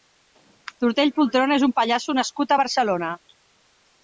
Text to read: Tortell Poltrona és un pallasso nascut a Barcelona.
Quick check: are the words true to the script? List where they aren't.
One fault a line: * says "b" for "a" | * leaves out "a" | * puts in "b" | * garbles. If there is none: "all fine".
all fine